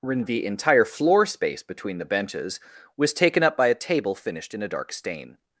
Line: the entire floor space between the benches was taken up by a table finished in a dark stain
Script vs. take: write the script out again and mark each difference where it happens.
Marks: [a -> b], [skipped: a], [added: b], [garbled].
the entire floor space between the benches was taken up by a table finished in a dark stain